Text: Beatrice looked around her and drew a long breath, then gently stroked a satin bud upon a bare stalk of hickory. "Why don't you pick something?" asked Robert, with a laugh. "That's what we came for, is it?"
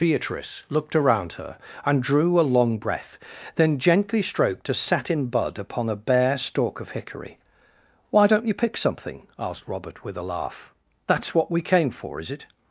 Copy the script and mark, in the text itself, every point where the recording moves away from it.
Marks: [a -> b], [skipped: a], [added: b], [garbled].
Beatrice looked around her and drew a long breath, then gently stroked a satin bud upon a bare stalk of hickory. "Why don't you pick something?" asked Robert, with a laugh. "That's what we came for, is it?"